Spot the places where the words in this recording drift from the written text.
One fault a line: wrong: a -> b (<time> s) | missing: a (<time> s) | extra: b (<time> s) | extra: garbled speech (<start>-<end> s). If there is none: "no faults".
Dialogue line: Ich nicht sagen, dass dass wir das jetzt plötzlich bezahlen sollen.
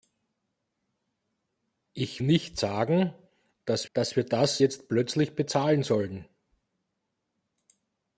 no faults